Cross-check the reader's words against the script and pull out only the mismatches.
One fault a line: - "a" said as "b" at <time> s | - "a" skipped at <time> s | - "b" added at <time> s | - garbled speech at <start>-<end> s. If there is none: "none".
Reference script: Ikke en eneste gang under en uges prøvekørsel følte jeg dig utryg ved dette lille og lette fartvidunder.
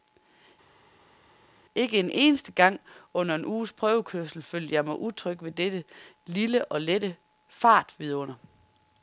- "dig" said as "mig" at 4.8 s